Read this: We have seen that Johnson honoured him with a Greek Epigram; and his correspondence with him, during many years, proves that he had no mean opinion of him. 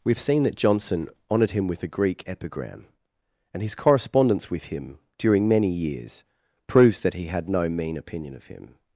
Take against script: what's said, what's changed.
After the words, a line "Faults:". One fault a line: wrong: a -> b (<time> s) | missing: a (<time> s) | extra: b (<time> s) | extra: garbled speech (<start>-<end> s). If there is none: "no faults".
We have seen that Johnson honoured him with a Greek Epigram; and his correspondence with him, during many years, proves that he had no mean opinion of him.
Faults:
no faults